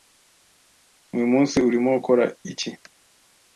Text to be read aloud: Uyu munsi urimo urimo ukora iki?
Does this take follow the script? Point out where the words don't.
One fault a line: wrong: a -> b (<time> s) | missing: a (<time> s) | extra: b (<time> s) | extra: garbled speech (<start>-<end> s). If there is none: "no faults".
missing: urimo (1.9 s)